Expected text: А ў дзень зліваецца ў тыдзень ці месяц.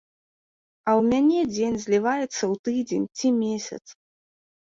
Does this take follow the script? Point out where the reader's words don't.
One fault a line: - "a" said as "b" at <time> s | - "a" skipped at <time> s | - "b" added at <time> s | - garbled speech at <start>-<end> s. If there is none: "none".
- "мяне" added at 1.1 s